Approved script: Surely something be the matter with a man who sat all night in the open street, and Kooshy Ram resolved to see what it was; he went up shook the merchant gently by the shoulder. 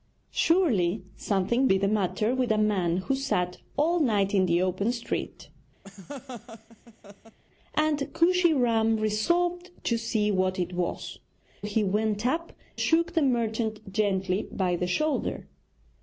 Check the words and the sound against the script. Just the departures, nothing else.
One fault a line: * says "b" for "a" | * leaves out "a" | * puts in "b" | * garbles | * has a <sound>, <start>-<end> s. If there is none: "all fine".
* has a laugh, 5.8-7.4 s